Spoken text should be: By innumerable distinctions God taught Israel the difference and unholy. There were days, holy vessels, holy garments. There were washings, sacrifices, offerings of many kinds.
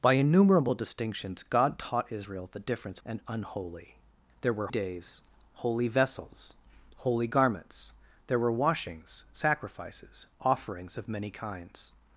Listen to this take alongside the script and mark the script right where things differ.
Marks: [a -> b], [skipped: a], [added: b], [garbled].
By innumerable distinctions God taught Israel the difference and unholy. There were days, holy vessels, holy garments. There were washings, sacrifices, offerings of many kinds.